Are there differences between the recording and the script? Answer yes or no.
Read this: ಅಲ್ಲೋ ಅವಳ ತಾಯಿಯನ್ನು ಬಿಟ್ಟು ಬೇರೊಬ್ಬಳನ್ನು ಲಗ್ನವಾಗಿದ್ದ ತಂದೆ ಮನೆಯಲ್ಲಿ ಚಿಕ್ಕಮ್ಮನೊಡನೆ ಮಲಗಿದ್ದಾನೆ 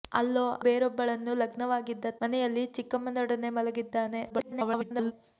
yes